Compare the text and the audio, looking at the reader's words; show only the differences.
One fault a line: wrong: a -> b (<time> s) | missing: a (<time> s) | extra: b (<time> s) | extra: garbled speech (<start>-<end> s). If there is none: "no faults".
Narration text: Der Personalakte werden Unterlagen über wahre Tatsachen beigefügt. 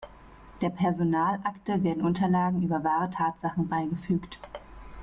no faults